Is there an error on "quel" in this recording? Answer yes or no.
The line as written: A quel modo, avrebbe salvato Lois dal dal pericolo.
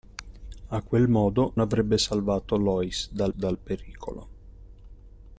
no